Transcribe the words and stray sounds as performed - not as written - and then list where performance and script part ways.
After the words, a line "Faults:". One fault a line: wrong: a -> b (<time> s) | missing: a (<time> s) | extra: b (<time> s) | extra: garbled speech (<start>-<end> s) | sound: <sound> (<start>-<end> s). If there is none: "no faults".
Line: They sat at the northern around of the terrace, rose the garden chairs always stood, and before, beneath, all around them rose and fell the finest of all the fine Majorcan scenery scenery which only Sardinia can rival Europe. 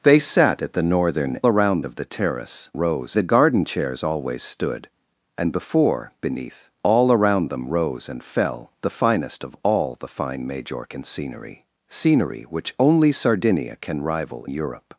They sat at the northern around of the terrace, rose the garden chairs always stood, and before, beneath, all around them rose and fell the finest of all the fine Majorcan scenery scenery which only Sardinia can rival Europe.
Faults:
no faults